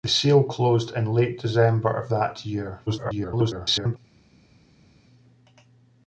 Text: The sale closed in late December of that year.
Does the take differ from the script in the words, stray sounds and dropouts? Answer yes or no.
yes